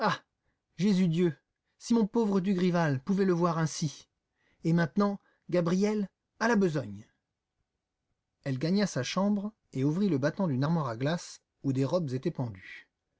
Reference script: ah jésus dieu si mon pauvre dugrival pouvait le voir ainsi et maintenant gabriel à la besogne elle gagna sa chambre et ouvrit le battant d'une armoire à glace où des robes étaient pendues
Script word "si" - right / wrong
right